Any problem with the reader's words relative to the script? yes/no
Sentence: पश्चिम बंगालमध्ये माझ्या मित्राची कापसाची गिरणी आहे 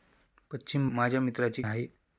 yes